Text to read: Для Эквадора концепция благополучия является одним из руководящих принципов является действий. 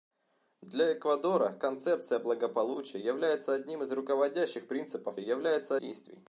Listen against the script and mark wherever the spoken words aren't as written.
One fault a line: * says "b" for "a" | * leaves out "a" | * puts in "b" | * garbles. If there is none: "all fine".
all fine